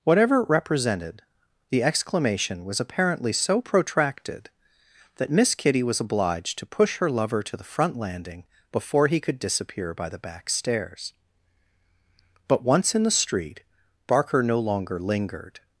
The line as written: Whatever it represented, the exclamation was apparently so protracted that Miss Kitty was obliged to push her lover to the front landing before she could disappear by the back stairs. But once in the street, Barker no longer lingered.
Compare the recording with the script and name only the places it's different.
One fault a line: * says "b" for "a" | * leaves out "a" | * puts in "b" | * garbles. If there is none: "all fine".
* says "he" for "she"